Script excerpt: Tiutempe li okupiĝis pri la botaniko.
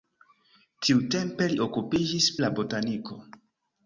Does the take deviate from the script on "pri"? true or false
true